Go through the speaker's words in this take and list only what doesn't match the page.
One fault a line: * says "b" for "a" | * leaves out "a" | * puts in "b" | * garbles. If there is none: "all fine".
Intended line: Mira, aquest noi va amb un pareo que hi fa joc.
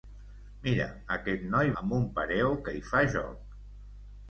* leaves out "va"